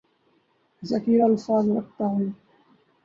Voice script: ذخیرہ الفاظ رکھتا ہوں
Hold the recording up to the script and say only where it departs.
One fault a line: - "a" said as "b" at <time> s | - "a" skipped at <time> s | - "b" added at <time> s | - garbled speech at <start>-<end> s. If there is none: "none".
none